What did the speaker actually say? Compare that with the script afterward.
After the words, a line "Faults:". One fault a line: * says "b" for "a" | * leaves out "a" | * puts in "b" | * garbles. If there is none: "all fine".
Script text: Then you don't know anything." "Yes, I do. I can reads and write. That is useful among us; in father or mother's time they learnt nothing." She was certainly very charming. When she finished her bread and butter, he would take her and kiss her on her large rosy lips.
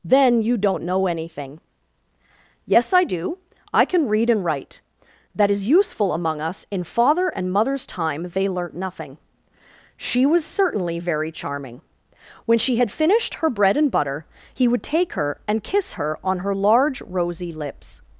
Then you don't know anything." "Yes, I do. I can read and write. That is useful among us; in father and mother's time they learnt nothing." She was certainly very charming. When she had finished her bread and butter, he would take her and kiss her on her large rosy lips.
Faults:
* says "read" for "reads"
* says "and" for "or"
* puts in "had"